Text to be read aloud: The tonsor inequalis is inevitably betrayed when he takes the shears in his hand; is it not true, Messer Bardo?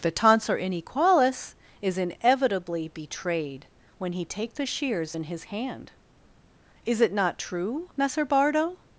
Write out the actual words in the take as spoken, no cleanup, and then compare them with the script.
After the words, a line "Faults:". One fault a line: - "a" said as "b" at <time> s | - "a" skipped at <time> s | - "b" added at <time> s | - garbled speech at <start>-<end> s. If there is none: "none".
The tonsor inequalis is inevitably betrayed when he take the shears in his hand; is it not true, Messer Bardo?
Faults:
- "takes" said as "take" at 4.2 s